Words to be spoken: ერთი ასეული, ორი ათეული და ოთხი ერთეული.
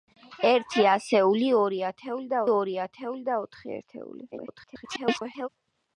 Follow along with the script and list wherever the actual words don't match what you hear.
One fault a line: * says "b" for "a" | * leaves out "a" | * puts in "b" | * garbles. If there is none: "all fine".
* puts in "ორი ათეული და"
* garbles